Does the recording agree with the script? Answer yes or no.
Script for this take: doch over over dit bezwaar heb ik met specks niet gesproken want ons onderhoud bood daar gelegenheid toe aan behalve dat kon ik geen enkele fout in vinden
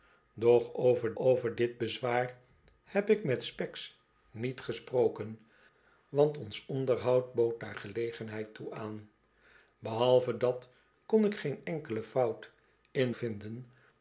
yes